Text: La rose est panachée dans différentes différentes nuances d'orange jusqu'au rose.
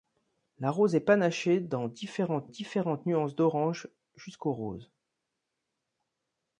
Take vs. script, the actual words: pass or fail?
pass